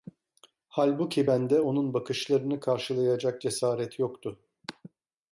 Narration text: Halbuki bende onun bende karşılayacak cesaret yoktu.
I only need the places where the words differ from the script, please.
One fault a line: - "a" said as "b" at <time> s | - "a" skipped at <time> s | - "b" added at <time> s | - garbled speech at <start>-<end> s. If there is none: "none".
- "bende" said as "bakışlarını" at 1.9 s